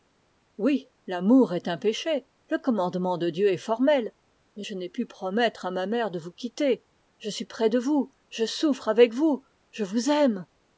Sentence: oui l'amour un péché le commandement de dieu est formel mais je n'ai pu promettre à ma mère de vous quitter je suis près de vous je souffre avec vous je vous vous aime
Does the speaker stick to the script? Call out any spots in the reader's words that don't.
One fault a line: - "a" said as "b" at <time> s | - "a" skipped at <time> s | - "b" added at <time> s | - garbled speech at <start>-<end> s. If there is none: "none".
- "est" added at 1.5 s
- "vous" skipped at 10.1 s